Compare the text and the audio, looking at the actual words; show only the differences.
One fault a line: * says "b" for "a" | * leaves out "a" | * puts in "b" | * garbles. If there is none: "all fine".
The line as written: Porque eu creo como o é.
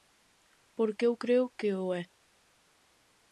* says "que" for "como"